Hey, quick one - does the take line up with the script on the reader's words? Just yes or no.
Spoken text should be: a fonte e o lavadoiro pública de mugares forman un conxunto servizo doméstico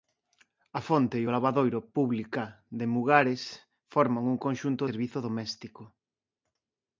yes